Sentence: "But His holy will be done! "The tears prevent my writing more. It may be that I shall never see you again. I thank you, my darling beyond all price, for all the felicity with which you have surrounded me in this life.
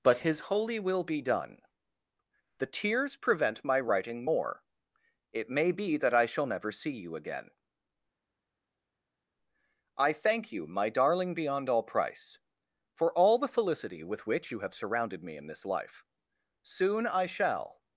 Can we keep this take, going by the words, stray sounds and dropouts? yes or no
no